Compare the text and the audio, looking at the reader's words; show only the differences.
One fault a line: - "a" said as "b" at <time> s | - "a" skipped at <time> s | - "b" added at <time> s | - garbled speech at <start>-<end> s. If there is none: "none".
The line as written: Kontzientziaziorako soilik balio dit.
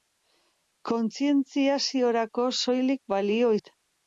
none